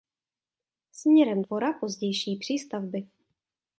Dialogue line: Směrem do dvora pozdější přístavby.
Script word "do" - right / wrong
wrong